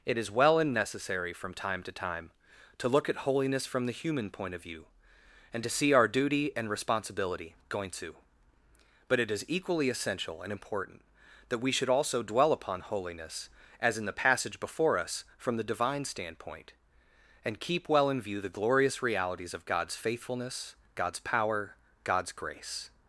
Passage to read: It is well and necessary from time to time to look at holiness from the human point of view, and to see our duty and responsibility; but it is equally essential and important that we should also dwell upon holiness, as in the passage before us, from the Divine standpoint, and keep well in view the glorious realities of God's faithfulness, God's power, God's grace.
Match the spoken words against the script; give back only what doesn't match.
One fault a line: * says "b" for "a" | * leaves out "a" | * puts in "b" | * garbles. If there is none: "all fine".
* puts in "going to"